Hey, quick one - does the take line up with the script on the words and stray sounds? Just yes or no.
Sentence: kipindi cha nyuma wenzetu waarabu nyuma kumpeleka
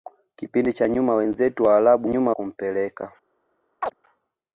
no